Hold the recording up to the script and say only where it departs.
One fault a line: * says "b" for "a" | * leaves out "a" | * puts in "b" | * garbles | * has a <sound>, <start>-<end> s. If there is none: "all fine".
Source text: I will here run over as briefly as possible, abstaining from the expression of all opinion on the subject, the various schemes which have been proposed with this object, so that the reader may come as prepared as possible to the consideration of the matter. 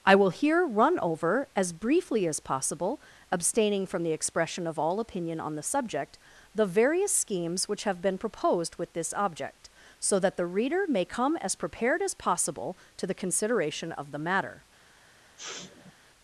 * has a sniff, 15.4-15.9 s